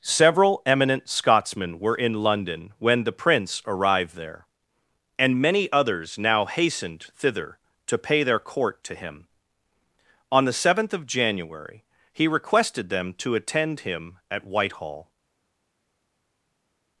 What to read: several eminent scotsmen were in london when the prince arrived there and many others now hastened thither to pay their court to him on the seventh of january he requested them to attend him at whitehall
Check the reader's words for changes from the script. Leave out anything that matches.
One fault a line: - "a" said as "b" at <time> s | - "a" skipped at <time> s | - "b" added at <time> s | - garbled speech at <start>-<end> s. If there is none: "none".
none